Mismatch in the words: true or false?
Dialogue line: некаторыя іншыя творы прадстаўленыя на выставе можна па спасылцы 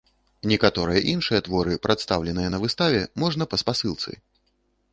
false